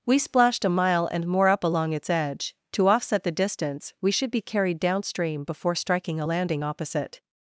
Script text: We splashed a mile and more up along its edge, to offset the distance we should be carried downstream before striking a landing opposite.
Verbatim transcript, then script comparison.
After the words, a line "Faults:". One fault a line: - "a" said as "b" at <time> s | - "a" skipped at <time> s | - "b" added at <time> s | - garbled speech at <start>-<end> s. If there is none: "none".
We splashed a mile and more up along its edge, to offset the distance we should be carried downstream before striking a landing opposite.
Faults:
none